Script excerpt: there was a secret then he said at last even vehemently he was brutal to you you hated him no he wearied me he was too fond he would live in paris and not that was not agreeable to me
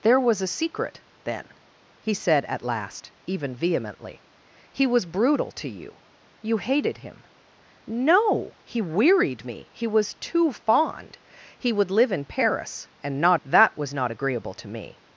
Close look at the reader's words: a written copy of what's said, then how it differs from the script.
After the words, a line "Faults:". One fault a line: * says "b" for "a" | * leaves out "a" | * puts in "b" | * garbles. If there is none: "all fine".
there was a secret then he said at last even vehemently he was brutal to you you hated him no he wearied me he was too fond he would live in paris and not that was not agreeable to me
Faults:
all fine